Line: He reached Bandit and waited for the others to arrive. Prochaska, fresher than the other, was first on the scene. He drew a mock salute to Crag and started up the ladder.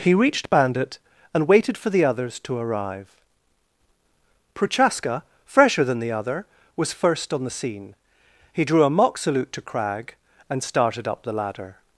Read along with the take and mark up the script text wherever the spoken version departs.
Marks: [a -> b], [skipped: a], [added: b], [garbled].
He reached Bandit and waited for the others to arrive. Prochaska, fresher than the other, was first on the scene. He drew a mock salute to Crag and started up the ladder.